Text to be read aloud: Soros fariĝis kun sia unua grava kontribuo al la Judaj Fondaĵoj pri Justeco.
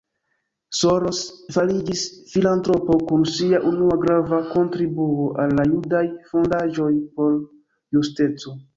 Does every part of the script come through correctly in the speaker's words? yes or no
no